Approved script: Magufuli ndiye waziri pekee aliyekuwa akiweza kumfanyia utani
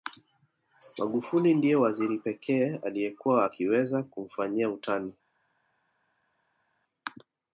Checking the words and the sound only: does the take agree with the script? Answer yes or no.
yes